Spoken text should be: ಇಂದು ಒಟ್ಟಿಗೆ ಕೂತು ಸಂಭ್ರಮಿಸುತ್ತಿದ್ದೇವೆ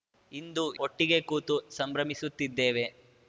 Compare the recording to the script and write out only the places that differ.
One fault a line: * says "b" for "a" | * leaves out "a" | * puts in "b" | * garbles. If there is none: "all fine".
all fine